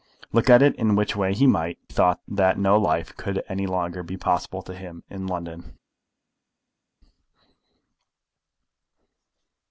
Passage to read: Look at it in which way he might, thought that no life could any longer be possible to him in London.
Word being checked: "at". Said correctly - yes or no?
yes